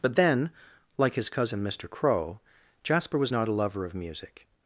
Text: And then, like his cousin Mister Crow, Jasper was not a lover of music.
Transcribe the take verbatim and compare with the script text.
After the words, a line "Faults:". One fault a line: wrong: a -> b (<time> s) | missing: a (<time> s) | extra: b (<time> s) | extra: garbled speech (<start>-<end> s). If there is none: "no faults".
But then, like his cousin Mister Crow, Jasper was not a lover of music.
Faults:
wrong: And -> But (0.0 s)